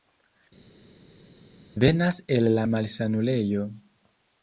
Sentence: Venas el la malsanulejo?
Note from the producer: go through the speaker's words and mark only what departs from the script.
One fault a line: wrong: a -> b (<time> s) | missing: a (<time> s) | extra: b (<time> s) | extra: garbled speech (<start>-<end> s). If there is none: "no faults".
no faults